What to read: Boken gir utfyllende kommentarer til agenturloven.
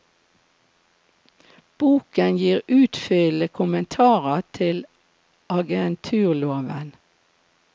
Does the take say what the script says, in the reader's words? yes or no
yes